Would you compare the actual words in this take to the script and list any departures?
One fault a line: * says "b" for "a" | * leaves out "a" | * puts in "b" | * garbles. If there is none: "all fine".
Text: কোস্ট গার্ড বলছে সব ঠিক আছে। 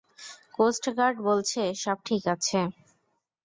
all fine